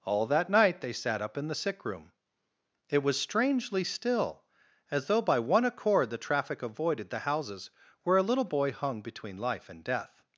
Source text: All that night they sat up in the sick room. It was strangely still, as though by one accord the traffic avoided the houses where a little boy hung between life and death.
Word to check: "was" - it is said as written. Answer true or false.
true